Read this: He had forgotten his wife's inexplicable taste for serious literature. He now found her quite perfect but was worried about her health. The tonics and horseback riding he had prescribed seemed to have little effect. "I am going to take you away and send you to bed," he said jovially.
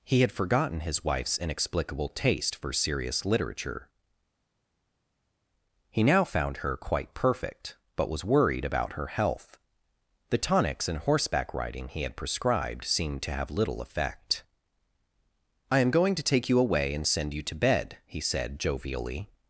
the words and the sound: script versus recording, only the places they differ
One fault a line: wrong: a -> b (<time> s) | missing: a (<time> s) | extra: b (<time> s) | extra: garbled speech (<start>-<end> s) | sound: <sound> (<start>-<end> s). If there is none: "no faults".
no faults